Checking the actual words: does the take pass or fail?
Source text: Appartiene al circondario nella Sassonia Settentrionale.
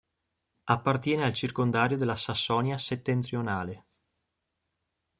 fail